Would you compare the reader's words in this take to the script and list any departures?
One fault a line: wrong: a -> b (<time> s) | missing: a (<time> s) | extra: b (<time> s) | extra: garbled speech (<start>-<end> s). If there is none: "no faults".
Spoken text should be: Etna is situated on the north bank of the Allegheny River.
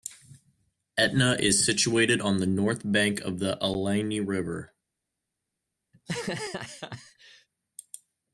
no faults